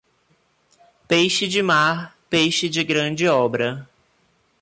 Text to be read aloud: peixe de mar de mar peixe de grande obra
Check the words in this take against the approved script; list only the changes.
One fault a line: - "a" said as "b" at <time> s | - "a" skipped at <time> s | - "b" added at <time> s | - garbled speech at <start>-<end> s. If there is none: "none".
- "de mar" skipped at 2.1 s